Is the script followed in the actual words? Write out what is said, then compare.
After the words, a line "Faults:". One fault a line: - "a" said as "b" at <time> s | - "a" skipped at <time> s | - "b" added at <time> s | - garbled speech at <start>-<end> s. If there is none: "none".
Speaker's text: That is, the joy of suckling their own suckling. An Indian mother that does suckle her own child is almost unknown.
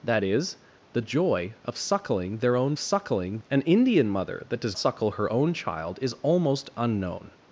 That is, the joy of suckling their own suckling. An Indian mother that does suckle her own child is almost unknown.
Faults:
none